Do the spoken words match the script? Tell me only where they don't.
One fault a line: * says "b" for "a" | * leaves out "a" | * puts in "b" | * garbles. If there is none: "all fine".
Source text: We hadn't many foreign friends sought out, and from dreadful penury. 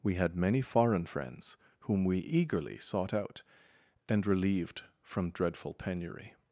* says "had" for "hadn't"
* puts in "whom we eagerly"
* puts in "relieved"